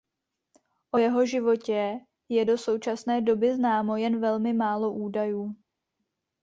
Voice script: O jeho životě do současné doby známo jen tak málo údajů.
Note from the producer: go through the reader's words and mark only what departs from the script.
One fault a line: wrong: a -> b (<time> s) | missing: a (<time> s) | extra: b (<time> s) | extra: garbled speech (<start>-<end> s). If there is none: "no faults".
extra: je (2.3 s)
wrong: tak -> velmi (4.2 s)